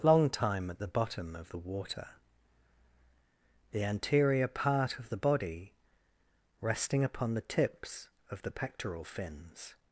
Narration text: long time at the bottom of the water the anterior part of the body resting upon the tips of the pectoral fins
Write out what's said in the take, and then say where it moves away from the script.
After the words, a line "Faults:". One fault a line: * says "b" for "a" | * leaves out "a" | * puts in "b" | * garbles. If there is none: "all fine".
long time at the bottom of the water the anterior part of the body resting upon the tips of the pectoral fins
Faults:
all fine